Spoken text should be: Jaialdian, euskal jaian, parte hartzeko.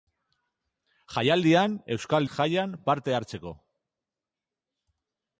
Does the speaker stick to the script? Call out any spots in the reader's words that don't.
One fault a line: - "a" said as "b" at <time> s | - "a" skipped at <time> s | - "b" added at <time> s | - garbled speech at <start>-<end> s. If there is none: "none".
none